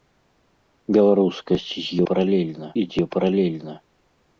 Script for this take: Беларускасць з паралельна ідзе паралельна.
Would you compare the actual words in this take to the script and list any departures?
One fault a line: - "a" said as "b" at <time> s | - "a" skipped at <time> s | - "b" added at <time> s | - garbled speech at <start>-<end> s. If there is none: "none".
none